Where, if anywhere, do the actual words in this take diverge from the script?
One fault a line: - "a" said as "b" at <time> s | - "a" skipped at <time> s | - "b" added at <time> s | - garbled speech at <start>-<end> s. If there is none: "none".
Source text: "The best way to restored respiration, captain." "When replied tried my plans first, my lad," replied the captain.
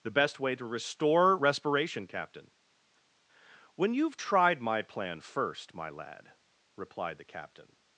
- "restored" said as "restore" at 0.7 s
- "replied" said as "you've" at 3.9 s
- "plans" said as "plan" at 4.8 s